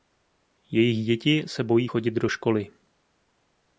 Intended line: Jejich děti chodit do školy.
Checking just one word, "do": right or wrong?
right